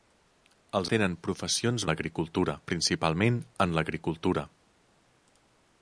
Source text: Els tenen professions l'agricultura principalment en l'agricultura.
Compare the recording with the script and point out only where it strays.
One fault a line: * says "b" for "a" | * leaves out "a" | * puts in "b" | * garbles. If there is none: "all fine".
all fine